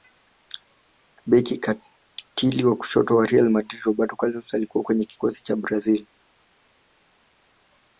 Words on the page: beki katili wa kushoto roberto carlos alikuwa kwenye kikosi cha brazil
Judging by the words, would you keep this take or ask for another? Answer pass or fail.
fail